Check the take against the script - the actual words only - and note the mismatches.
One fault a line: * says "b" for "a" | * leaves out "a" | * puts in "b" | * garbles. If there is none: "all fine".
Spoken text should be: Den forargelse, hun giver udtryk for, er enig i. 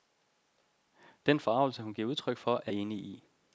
all fine